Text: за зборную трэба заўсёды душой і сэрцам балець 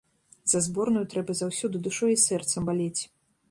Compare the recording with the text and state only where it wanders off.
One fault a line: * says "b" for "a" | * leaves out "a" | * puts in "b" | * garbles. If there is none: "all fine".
all fine